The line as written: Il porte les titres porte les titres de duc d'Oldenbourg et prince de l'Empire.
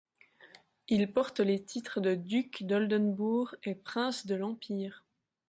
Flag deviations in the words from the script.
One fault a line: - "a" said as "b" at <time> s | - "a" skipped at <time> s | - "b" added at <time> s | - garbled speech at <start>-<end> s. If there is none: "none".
- "porte les titres" skipped at 2.0 s